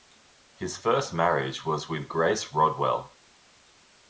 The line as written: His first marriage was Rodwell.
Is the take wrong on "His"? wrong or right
right